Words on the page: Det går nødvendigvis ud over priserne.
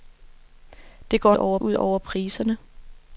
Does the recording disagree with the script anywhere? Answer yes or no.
yes